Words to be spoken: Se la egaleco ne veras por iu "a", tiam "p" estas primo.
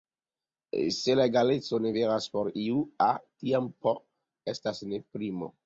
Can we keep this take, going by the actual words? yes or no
no